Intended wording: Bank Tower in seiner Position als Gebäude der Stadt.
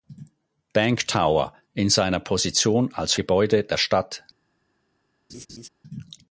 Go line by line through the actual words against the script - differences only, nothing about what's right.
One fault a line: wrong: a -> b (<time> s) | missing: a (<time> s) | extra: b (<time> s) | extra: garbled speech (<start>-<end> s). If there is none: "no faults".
no faults